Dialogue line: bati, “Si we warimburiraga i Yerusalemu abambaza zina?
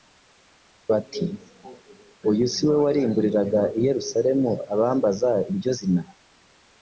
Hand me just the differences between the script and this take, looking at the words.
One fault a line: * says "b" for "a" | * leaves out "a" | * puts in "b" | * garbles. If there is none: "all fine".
* puts in "Uyu"
* puts in "iryo"